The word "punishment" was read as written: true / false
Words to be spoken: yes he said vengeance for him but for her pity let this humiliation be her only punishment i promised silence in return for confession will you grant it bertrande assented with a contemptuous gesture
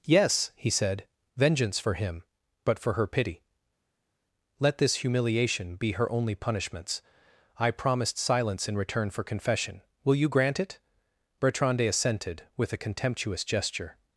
false